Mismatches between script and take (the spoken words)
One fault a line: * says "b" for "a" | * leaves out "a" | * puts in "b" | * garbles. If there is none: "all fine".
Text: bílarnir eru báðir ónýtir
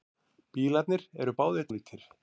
all fine